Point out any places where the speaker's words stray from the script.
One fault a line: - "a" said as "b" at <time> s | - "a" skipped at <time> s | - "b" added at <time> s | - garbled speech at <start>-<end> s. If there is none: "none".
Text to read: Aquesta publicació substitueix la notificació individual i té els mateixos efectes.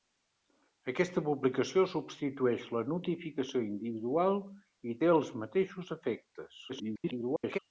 - garbled speech at 6.7-7.6 s